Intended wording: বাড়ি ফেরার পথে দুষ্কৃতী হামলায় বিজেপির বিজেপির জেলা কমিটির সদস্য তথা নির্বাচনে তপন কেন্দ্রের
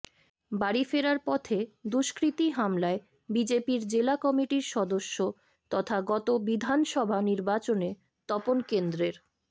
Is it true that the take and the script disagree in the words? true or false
true